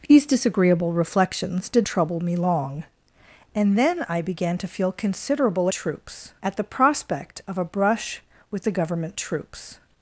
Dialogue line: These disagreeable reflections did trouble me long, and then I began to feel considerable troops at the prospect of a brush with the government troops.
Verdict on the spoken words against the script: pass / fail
pass